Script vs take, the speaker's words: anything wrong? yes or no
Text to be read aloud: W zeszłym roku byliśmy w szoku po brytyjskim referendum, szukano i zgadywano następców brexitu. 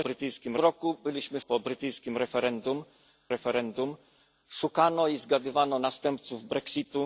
yes